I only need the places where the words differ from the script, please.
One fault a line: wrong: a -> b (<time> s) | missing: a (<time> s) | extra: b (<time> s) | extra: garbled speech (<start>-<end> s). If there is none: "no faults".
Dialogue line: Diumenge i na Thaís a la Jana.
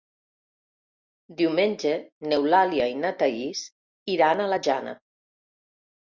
extra: n'Eulàlia (2.3 s)
extra: iran (4.2 s)